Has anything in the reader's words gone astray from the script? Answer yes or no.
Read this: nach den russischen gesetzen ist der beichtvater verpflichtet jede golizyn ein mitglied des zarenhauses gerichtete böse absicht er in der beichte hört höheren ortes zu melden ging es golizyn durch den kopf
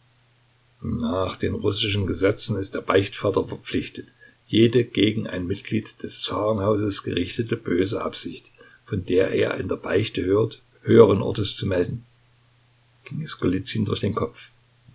yes